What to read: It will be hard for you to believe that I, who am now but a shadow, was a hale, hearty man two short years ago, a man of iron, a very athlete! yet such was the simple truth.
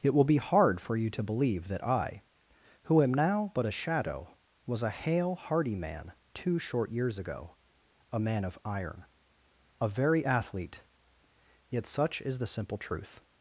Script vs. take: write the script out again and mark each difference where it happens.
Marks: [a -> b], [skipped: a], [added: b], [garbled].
It will be hard for you to believe that I, who am now but a shadow, was a hale, hearty man two short years ago, a man of iron, a very athlete! yet such [was -> is] the simple truth.